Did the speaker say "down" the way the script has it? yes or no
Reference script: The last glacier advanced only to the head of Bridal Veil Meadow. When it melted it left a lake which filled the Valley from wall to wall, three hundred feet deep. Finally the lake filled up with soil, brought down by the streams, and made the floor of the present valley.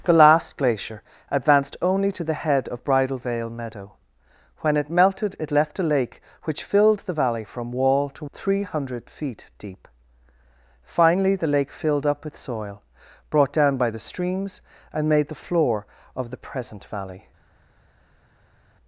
yes